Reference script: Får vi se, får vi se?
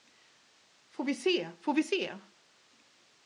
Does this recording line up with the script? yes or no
yes